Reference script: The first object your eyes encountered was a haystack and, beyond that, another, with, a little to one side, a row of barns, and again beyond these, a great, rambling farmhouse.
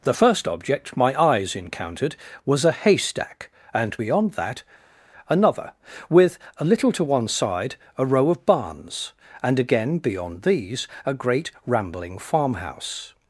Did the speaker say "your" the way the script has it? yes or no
no